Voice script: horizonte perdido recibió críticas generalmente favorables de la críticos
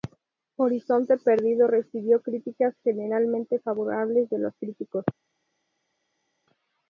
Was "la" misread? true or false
true